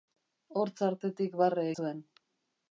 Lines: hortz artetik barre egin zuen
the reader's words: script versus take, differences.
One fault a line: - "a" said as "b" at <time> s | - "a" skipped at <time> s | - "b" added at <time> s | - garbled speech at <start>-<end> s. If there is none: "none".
- "egin" skipped at 1.7 s